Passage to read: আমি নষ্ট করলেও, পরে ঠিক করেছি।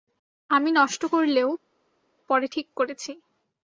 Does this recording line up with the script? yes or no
yes